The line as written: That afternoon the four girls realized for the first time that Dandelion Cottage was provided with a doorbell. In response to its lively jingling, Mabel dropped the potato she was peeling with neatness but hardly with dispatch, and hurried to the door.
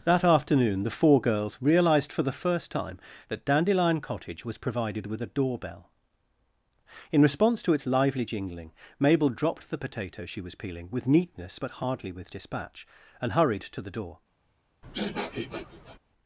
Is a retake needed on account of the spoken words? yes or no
no